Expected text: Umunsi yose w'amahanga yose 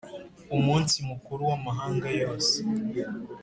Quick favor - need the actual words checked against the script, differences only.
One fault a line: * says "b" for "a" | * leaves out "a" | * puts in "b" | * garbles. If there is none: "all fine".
* says "mukuru" for "yose"